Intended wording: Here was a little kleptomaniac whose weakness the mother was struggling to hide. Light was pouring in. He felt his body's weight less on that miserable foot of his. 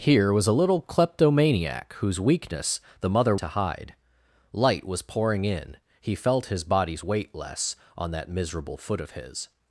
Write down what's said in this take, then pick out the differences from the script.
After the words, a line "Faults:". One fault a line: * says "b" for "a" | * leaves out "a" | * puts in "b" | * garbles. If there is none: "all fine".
Here was a little kleptomaniac whose weakness the mother to hide. Light was pouring in. He felt his body's weight less on that miserable foot of his.
Faults:
* leaves out "was struggling"